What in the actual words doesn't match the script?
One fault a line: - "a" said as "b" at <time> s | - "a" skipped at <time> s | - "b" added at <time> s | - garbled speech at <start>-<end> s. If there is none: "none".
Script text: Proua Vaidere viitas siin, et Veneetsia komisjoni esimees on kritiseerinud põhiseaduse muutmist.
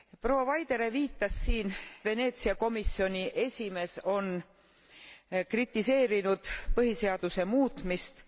- "et" skipped at 1.7 s